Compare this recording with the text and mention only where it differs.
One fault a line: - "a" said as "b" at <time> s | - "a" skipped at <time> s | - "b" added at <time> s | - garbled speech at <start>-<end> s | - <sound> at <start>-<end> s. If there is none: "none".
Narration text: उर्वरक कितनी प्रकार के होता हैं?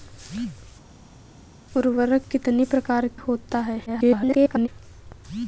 - "के" skipped at 3.1 s
- garbled speech at 3.9-4.7 s